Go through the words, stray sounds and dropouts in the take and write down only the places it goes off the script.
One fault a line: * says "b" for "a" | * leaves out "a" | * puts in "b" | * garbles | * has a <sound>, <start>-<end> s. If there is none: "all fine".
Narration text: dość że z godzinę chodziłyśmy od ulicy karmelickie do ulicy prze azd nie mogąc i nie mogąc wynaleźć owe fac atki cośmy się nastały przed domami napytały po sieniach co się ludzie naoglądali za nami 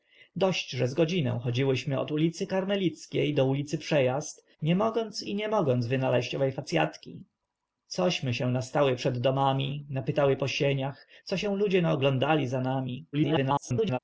* garbles